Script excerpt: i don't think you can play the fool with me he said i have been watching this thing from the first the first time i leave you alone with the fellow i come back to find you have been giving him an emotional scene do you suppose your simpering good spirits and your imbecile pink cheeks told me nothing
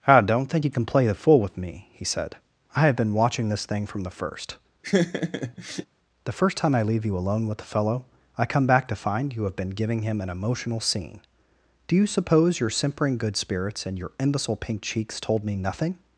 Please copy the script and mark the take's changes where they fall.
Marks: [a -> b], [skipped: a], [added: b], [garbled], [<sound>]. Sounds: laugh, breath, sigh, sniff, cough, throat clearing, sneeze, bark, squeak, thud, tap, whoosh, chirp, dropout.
i don't think you can play the fool with me he said i have been watching this thing from the first [laugh] the first time i leave you alone with the fellow i come back to find you have been giving him an emotional scene do you suppose your simpering good spirits and your imbecile pink cheeks told me nothing